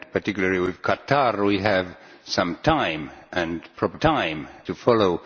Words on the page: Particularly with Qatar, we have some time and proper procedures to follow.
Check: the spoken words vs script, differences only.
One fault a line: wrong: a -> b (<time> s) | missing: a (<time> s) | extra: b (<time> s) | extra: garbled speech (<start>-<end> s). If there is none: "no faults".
wrong: procedures -> time (4.0 s)